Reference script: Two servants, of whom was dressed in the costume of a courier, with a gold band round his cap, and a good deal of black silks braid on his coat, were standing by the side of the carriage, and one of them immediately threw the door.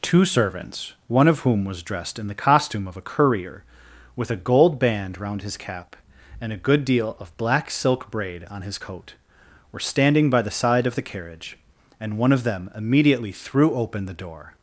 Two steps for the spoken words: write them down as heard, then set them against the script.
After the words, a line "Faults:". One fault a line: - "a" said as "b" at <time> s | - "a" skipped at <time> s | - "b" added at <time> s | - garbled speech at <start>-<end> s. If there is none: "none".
Two servants, one of whom was dressed in the costume of a courier, with a gold band round his cap, and a good deal of black silk braid on his coat, were standing by the side of the carriage, and one of them immediately threw open the door.
Faults:
- "one" added at 1.1 s
- "silks" said as "silk" at 7.7 s
- "open" added at 13.7 s